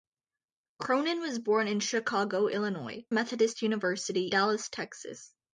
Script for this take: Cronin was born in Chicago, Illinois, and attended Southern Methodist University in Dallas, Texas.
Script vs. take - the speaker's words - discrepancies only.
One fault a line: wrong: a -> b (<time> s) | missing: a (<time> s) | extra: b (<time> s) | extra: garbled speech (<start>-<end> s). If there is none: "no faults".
missing: and attended Southern (3.0 s)
missing: in (4.3 s)